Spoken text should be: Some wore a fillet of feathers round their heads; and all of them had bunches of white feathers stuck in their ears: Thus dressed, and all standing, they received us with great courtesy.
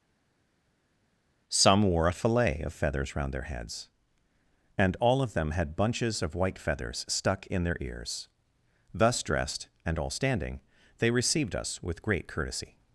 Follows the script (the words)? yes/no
yes